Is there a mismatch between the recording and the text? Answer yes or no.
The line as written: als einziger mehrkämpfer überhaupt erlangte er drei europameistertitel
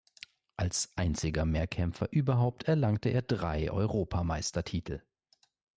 no